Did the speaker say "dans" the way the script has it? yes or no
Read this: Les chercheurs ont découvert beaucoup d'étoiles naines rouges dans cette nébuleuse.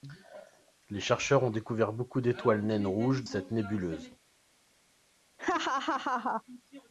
no